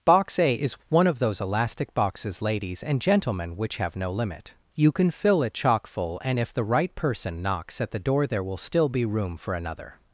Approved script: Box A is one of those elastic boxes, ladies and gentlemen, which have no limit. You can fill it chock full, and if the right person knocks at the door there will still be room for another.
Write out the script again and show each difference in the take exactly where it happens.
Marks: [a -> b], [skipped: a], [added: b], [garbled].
Box A is one of those elastic boxes, ladies and gentlemen, which have no limit. You can fill it chock full, and if the right person knocks at the door there will still be room for another.